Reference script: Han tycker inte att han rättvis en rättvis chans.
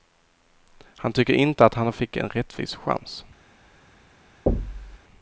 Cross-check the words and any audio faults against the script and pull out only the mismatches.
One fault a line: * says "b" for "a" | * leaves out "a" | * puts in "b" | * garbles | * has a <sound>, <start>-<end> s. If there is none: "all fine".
* says "fick" for "rättvis"
* has a thud, 4.5-5.0 s